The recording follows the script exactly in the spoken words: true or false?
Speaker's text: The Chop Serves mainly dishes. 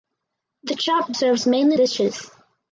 true